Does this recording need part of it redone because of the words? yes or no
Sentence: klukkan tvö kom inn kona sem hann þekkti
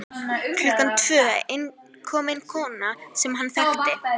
no